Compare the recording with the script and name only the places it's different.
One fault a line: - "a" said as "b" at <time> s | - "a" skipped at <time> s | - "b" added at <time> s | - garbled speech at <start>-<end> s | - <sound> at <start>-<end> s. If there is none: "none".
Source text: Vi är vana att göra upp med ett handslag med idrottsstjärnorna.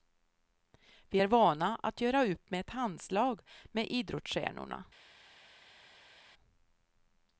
none